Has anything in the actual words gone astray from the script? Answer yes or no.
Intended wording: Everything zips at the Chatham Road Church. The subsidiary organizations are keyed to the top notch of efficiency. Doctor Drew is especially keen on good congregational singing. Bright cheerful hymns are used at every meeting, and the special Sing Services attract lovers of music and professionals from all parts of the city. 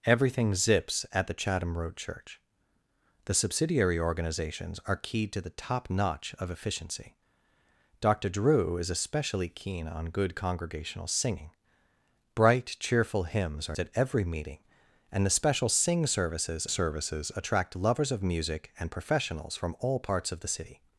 yes